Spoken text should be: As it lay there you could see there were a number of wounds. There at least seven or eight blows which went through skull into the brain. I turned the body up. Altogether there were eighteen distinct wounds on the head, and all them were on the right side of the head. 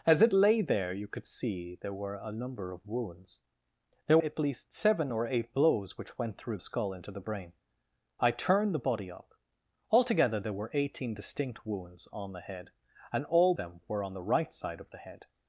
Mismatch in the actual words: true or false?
false